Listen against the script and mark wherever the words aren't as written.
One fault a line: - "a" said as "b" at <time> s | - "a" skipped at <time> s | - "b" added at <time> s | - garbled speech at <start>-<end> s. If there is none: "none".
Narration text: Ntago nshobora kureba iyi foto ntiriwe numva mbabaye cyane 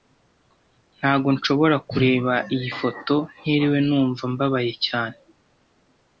none